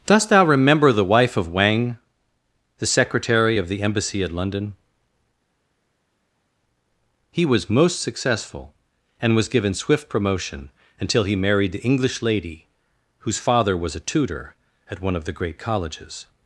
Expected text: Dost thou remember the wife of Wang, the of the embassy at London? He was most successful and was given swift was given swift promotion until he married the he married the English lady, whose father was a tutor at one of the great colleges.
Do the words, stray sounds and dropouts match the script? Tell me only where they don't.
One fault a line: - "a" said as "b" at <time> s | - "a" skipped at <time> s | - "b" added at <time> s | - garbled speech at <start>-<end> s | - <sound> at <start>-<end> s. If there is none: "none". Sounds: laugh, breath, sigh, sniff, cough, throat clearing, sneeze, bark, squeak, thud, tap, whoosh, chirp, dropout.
- "secretary" added at 2.9 s
- "was given swift" skipped at 10.1 s
- "he married the" skipped at 11.8 s